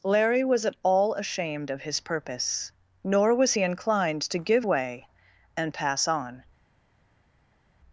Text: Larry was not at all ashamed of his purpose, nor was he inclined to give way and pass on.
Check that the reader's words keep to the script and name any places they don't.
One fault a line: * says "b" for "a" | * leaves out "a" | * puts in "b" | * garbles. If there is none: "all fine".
* leaves out "not"